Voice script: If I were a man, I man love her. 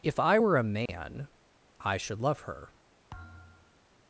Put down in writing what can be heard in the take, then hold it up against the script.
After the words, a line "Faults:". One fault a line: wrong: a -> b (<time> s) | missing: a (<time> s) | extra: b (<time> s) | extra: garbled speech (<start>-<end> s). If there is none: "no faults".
If I were a man, I should love her.
Faults:
wrong: man -> should (2.0 s)